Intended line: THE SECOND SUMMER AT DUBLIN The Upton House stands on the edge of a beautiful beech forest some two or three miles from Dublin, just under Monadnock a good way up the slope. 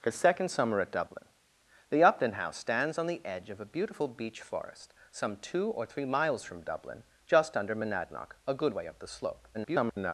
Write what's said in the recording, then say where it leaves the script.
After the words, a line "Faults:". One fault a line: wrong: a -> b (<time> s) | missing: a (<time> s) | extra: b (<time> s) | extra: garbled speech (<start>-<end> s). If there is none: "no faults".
THE SECOND SUMMER AT DUBLIN The Upton House stands on the edge of a beautiful beech forest some two or three miles from Dublin, just under Monadnock a good way up the slope. [garbled]
Faults:
extra: garbled speech (9.5-10.1 s)